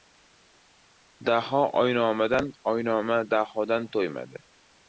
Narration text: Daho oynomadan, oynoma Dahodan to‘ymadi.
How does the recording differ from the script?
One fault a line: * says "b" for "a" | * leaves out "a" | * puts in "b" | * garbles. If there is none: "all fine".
all fine